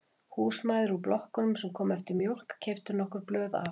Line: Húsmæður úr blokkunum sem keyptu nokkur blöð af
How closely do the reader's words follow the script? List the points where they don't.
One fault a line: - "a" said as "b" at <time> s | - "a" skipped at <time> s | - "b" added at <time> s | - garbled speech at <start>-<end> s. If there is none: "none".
- "komu eftir mjólk" added at 1.8 s